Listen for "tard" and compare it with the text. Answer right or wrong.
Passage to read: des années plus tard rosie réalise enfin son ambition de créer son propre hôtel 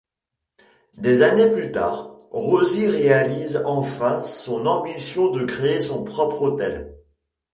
right